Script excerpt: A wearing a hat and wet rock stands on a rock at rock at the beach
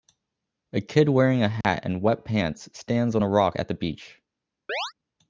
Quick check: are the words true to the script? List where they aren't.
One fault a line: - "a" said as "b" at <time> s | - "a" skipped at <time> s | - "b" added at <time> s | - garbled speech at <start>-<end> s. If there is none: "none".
- "kid" added at 0.8 s
- "rock" said as "pants" at 2.2 s
- "rock at" skipped at 3.7 s